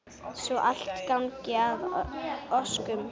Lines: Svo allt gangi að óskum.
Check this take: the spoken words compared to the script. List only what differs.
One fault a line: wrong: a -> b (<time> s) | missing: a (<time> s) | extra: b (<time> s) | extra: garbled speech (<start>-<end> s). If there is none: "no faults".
no faults